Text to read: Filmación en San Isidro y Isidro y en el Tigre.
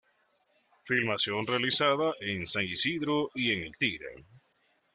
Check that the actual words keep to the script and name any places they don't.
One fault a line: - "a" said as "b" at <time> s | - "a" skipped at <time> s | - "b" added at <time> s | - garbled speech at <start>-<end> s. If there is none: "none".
- "realizada" added at 1.4 s
- "Isidro y" skipped at 3.5 s